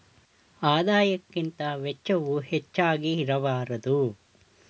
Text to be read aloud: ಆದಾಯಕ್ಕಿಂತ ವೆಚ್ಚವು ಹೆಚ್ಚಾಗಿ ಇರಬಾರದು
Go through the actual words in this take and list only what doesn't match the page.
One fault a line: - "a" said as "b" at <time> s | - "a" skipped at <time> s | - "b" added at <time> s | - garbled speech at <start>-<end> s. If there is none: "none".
none